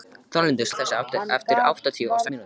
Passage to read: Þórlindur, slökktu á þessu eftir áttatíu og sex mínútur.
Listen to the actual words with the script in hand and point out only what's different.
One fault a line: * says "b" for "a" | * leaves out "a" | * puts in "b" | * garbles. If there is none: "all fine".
* leaves out "slökktu"
* leaves out "sex"